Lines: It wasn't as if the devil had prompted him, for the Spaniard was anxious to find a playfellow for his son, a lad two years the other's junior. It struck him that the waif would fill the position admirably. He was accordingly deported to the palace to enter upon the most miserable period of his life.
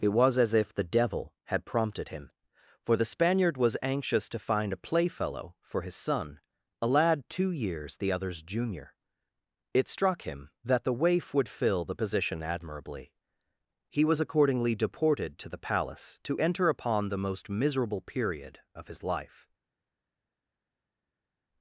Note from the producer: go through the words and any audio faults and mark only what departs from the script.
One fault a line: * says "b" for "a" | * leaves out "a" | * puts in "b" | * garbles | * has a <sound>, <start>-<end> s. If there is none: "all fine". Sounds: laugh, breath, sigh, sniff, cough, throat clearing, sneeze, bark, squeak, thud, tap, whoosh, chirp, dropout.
* says "was" for "wasn't"